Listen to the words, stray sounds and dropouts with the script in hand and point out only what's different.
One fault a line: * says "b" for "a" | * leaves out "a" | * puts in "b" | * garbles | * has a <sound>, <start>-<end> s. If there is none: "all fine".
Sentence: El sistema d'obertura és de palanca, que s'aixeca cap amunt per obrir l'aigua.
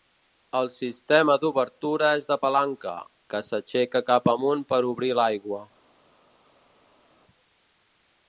all fine